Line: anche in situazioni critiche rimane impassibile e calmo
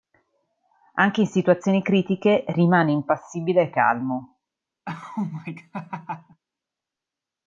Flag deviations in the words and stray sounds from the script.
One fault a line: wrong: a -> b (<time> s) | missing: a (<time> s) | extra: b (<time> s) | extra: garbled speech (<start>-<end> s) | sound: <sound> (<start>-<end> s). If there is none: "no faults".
sound: laugh (4.9-6.4 s)